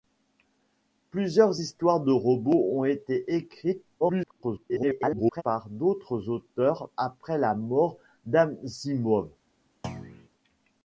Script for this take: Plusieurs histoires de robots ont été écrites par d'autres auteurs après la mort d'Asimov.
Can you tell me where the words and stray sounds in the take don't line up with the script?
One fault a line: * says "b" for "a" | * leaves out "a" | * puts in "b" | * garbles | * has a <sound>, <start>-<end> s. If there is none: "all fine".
* garbles
* has a thud, 9.8-10.3 s